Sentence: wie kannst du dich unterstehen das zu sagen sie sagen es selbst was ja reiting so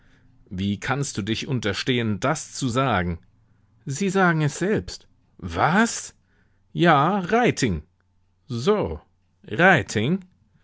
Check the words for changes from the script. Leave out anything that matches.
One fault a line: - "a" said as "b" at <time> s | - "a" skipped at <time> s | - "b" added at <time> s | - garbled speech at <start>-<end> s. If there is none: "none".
none